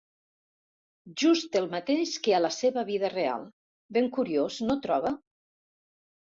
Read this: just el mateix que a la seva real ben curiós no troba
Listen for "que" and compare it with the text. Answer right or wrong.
right